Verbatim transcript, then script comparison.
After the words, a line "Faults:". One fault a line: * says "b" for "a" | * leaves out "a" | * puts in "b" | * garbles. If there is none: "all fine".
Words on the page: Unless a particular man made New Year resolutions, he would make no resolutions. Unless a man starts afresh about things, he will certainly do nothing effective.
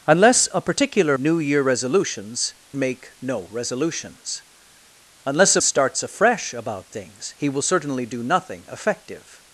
Unless a particular New Year resolutions, make no resolutions. Unless a starts afresh about things, he will certainly do nothing effective.
Faults:
* leaves out "man made"
* leaves out "he would"
* leaves out "man"